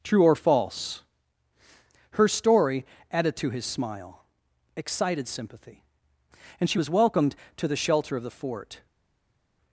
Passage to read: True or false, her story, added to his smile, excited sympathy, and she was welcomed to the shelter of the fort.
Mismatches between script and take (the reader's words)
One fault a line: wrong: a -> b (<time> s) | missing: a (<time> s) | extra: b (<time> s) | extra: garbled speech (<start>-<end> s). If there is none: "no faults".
no faults